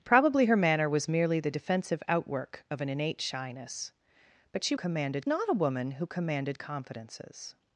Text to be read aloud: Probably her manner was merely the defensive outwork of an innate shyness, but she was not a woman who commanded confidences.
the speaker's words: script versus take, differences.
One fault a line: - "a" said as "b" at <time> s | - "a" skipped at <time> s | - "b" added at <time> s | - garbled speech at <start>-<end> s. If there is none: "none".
- "was" said as "commanded" at 4.7 s